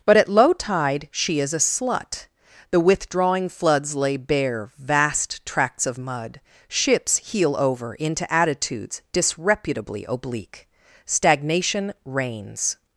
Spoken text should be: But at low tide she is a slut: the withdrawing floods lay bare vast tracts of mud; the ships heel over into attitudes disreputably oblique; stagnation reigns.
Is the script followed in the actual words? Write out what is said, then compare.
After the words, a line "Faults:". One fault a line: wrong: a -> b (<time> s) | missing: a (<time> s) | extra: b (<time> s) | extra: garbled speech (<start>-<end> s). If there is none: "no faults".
But at low tide she is a slut: the withdrawing floods lay bare vast tracts of mud; ships heel over into attitudes disreputably oblique; stagnation reigns.
Faults:
missing: the (6.4 s)